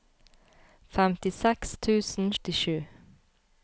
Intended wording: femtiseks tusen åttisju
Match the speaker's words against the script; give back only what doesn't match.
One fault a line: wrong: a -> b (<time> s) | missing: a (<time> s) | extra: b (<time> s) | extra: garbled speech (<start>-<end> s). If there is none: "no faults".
no faults